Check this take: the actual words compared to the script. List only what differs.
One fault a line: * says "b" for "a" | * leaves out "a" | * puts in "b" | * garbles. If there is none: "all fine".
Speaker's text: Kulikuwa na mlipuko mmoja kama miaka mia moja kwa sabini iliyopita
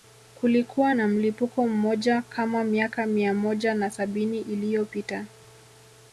* says "na" for "kwa"